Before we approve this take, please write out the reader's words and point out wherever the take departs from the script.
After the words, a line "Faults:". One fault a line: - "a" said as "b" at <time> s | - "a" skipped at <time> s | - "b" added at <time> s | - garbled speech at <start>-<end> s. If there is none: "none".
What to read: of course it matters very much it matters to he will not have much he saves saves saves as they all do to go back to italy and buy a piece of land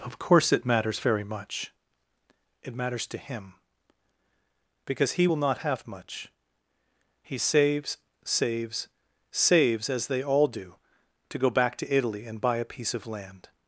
of course it matters very much it matters to him because he will not have much he saves saves saves as they all do to go back to italy and buy a piece of land
Faults:
- "him because" added at 3.2 s